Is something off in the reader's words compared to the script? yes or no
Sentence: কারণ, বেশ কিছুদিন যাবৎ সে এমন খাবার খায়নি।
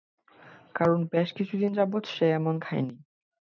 yes